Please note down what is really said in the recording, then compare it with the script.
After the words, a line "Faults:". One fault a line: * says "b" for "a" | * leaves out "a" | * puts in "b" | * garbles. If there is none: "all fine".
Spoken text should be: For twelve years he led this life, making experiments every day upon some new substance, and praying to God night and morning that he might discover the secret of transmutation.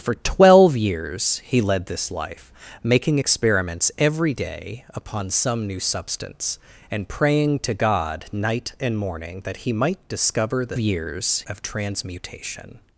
For twelve years he led this life, making experiments every day upon some new substance, and praying to God night and morning that he might discover the years of transmutation.
Faults:
* says "years" for "secret"